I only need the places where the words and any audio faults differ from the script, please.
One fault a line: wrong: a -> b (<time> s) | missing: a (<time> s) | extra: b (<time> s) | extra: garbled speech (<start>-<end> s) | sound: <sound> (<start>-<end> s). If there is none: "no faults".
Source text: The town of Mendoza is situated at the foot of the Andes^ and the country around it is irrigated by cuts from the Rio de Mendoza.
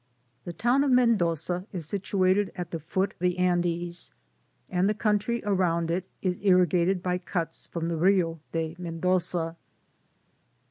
missing: of (3.1 s)